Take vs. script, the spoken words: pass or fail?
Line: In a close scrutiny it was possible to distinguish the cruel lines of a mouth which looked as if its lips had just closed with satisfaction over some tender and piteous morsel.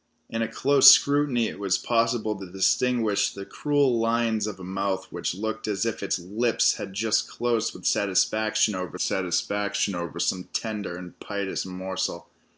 fail